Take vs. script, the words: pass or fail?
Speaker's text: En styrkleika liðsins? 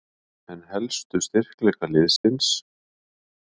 fail